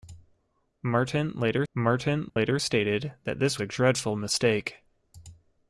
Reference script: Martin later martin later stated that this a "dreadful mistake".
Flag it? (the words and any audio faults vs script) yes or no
yes